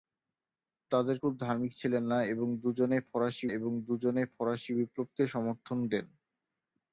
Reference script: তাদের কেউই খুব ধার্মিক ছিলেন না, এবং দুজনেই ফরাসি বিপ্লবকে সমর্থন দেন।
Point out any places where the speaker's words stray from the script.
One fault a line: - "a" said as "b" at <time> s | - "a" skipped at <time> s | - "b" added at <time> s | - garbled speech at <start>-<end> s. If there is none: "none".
- "কেউই" skipped at 1.2 s
- "এবং দুজনেই ফরাসি" added at 3.5 s